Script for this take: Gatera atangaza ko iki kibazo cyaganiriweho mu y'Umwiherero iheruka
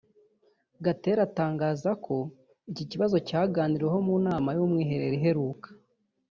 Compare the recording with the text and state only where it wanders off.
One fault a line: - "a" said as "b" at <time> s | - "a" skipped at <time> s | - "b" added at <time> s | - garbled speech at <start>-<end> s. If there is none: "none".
- "nama" added at 4.3 s